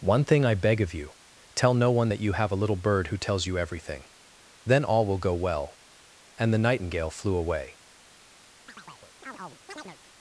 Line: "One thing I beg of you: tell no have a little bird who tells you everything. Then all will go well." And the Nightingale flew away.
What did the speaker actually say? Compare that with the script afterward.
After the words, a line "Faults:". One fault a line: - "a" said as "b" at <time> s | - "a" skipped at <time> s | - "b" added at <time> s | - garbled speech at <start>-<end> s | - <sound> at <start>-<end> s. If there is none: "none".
"One thing I beg of you: tell no one that you have a little bird who tells you everything. Then all will go well." And the Nightingale flew away.
Faults:
- "one that you" added at 1.9 s
- chirp at 8.7-10.0 s